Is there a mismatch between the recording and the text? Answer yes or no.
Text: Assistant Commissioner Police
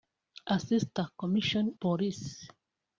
no